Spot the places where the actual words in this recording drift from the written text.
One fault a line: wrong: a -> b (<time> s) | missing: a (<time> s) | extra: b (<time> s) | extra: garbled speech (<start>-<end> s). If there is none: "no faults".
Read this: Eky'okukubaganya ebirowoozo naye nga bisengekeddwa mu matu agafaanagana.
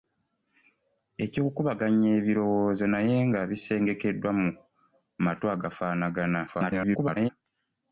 extra: garbled speech (6.5-7.3 s)